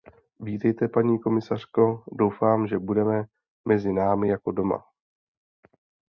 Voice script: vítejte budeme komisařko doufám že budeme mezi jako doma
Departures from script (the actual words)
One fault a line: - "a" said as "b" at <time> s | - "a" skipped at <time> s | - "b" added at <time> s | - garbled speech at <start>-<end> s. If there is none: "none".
- "budeme" said as "paní" at 0.9 s
- "námi" added at 3.9 s